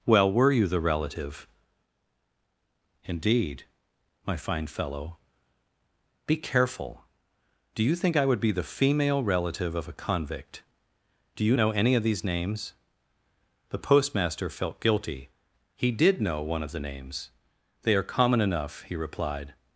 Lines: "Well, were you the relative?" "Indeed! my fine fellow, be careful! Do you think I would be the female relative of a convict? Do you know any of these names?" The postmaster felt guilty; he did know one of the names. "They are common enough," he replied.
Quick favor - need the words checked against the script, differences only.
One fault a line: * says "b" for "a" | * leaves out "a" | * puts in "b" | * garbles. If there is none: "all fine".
all fine